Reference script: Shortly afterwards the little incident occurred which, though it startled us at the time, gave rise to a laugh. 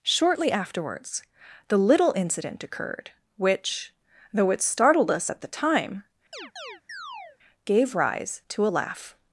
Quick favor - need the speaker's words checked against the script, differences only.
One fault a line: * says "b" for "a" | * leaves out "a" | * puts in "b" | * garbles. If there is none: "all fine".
all fine